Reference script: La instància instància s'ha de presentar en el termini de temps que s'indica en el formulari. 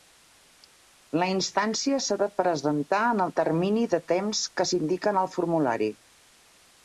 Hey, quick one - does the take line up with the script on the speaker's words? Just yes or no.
no